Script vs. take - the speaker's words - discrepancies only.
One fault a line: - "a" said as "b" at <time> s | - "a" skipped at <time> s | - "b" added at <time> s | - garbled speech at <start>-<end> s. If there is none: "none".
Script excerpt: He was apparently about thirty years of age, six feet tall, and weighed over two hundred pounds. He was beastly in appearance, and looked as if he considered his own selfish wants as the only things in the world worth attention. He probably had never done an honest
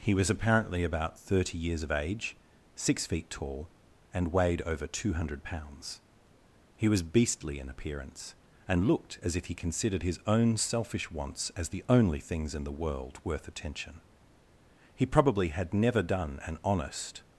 none